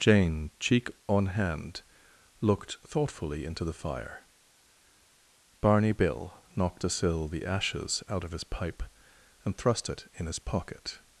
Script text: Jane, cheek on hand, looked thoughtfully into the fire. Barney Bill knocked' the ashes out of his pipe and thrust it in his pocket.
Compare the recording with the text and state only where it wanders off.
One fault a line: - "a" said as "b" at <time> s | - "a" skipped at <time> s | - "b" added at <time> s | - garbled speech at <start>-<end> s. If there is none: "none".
- "a sill" added at 6.8 s